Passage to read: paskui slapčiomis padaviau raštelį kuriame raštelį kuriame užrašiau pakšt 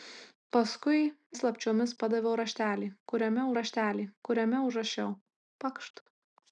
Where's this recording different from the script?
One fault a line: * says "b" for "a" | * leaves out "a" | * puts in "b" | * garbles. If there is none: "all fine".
all fine